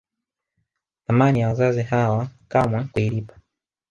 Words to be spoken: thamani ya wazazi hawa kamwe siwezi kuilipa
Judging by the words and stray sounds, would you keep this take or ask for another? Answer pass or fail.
fail